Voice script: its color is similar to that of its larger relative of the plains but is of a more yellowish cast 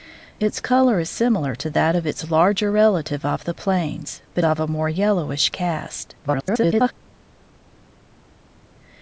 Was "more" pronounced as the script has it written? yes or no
yes